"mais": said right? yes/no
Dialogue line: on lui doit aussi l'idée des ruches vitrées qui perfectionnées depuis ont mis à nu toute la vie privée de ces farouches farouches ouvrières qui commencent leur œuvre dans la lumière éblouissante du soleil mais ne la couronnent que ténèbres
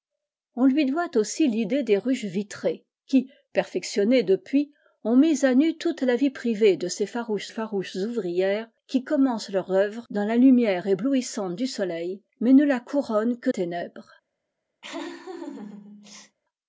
yes